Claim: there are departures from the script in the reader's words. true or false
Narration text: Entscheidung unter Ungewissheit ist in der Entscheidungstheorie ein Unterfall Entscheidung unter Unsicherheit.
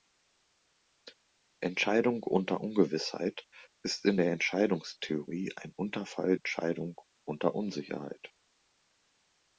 false